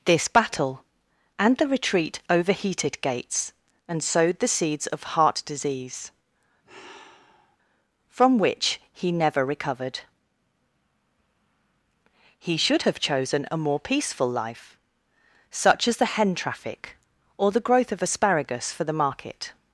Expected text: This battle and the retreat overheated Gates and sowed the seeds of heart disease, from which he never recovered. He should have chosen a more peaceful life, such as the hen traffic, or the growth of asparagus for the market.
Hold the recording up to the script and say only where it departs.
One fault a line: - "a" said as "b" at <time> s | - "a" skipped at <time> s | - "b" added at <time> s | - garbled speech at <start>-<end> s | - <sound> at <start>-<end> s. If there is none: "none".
- sigh at 6.6-7.6 s